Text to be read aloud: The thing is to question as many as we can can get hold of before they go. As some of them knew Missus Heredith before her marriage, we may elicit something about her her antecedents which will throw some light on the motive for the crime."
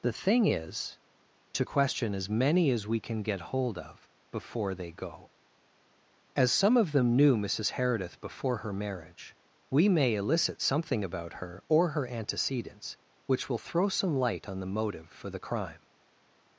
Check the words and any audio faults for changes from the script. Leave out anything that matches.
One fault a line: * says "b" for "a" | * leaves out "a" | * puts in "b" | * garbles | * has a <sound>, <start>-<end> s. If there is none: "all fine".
* leaves out "can"
* puts in "or"